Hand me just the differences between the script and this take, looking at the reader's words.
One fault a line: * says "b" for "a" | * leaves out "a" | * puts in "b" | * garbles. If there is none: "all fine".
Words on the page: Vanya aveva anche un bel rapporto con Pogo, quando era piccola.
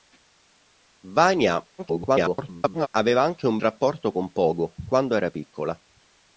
* garbles
* leaves out "bel"